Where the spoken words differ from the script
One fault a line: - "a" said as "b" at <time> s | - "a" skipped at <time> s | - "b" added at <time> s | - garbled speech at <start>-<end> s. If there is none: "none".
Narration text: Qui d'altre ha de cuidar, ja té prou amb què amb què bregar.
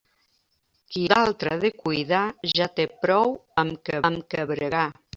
none